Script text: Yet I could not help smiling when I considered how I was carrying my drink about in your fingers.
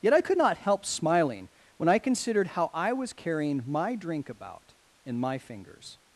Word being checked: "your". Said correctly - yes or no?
no